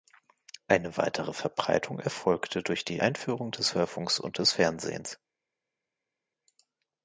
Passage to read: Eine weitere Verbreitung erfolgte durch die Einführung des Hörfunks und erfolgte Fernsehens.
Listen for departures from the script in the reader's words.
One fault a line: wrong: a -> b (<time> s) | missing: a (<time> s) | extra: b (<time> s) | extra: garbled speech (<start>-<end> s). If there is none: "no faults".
wrong: erfolgte -> des (4.4 s)